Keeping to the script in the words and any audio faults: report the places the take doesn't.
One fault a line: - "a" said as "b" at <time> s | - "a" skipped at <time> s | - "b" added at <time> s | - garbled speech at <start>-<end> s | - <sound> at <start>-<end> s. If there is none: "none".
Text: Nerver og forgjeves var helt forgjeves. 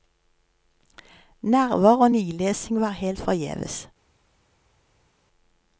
- "forgjeves" said as "nilesing" at 2.1 s